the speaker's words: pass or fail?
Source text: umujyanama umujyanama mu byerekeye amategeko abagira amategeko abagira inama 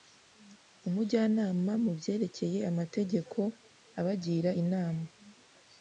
fail